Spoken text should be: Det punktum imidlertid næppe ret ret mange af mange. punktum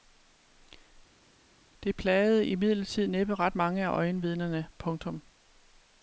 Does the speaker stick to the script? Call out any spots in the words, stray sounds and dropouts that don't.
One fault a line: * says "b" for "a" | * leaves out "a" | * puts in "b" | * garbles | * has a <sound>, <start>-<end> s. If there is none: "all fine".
* says "plagede" for "punktum"
* leaves out "ret"
* says "øjenvidnerne" for "mange"